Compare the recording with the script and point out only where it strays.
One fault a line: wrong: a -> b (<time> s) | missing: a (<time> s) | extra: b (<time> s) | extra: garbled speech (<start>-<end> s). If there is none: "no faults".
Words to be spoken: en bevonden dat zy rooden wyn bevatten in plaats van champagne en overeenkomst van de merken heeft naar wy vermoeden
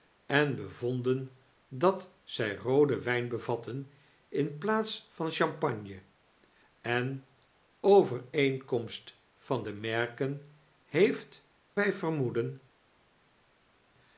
missing: naar (11.5 s)